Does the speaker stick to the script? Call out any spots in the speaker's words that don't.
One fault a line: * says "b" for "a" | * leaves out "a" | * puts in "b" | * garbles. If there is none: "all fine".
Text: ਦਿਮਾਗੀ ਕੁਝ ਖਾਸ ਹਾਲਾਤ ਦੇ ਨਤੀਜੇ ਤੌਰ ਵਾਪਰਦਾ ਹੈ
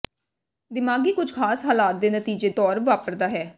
all fine